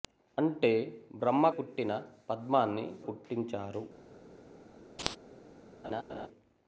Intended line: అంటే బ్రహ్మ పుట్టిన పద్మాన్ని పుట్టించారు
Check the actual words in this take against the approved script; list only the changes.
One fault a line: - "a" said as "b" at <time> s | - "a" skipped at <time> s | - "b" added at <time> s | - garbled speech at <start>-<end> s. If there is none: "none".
none